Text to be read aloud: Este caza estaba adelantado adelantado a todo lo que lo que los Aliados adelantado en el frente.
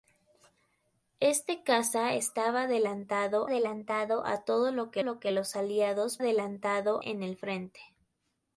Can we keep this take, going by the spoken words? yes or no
yes